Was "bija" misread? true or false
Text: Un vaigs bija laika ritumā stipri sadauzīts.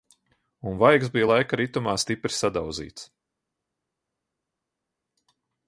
false